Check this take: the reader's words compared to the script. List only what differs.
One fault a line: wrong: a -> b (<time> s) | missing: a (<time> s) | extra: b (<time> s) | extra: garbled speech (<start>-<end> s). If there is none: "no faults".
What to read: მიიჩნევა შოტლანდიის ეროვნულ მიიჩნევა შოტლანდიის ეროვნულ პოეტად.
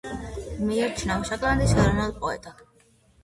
missing: მიიჩნევა შოტლანდიის ეროვნულ (2.1 s)